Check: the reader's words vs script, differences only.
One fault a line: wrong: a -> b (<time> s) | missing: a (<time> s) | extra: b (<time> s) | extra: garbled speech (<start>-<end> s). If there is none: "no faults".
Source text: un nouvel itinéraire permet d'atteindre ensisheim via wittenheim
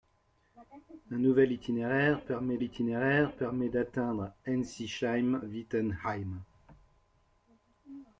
extra: itinéraire permet (2.6 s)
missing: via (5.4 s)